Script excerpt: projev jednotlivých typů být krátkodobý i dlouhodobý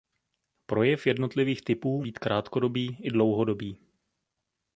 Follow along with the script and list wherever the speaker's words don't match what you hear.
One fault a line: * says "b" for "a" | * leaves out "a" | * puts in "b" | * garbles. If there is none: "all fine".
all fine